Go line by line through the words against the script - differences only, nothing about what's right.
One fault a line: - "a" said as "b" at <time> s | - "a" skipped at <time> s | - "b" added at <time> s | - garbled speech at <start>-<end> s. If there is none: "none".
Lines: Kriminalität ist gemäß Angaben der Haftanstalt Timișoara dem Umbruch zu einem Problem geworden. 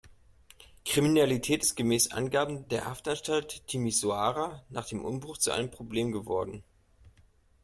- "nach" added at 4.7 s